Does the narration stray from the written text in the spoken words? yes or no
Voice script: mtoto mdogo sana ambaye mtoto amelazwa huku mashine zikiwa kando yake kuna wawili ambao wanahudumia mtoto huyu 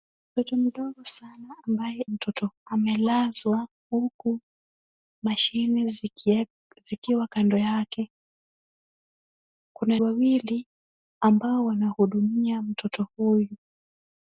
no